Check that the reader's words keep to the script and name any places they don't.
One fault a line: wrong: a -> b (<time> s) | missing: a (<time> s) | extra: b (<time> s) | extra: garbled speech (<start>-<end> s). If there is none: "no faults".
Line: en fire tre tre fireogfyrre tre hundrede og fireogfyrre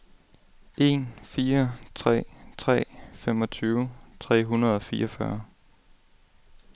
wrong: fireogfyrre -> femogtyve (3.1 s)